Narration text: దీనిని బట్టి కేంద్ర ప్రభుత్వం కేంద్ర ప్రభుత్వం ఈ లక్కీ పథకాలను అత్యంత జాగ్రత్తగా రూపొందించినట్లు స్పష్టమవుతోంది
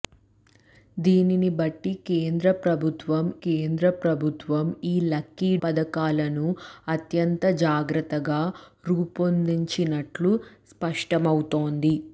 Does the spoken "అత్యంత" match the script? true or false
true